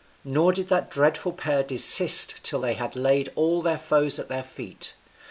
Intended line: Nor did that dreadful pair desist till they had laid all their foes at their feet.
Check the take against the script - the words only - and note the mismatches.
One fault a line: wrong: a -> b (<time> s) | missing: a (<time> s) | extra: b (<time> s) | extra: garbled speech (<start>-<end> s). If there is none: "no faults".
no faults